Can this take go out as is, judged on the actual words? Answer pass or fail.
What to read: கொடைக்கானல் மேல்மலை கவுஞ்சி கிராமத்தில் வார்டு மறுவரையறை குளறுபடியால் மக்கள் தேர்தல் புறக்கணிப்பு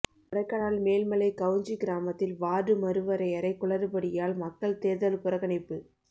pass